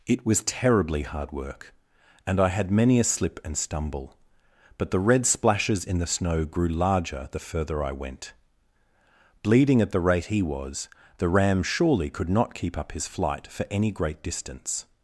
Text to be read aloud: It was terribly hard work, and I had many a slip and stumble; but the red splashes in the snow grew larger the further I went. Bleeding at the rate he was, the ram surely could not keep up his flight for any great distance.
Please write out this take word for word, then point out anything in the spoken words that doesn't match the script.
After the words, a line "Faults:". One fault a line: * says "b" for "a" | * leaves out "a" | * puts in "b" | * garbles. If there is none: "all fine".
It was terribly hard work, and I had many a slip and stumble; but the red splashes in the snow grew larger the further I went. Bleeding at the rate he was, the ram surely could not keep up his flight for any great distance.
Faults:
all fine